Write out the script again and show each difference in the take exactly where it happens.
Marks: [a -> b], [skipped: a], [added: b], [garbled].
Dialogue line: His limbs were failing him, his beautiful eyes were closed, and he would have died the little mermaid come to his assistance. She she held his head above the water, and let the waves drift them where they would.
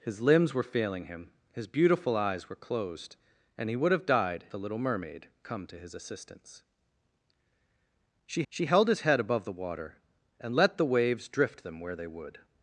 His limbs were failing him, his beautiful eyes were closed, and he would have died the little mermaid come to his assistance. She she held his head above the water, and let the waves drift them where they would.